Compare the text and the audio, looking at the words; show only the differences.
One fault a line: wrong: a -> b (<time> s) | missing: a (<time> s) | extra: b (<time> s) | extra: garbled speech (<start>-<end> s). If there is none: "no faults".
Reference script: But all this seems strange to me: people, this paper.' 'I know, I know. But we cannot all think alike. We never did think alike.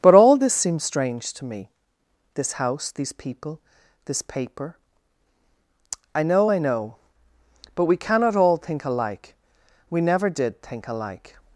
extra: this house these (2.4 s)